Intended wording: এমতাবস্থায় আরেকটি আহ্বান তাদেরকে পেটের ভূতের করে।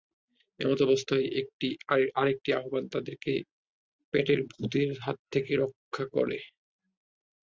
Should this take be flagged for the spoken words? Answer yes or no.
yes